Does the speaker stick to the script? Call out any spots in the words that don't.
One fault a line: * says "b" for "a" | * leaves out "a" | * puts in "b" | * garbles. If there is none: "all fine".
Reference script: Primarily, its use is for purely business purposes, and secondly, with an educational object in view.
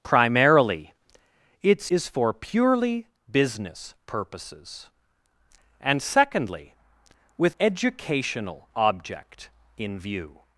* leaves out "use"
* leaves out "an"